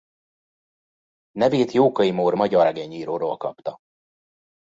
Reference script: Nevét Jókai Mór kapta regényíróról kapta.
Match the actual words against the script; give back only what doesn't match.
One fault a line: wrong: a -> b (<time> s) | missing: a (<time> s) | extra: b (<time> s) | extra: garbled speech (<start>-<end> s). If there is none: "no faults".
wrong: kapta -> magyar (2.3 s)